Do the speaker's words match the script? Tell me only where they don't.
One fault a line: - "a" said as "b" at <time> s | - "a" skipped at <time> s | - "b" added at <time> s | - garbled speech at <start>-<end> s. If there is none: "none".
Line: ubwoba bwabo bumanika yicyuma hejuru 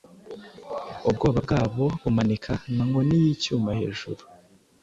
- "nka nkoni" added at 2.7 s